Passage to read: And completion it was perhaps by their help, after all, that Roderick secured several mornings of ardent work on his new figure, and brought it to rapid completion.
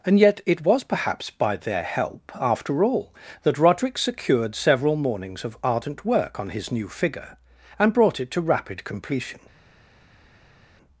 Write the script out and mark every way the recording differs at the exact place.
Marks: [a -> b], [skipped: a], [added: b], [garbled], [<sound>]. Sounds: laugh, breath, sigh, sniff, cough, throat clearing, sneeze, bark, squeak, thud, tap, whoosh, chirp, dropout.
And [completion -> yet] it was perhaps by their help, after all, that Roderick secured several mornings of ardent work on his new figure, and brought it to rapid completion.